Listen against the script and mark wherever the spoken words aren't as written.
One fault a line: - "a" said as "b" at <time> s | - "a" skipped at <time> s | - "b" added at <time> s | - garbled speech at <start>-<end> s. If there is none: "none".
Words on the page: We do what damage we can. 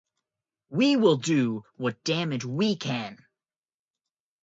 - "will" added at 0.9 s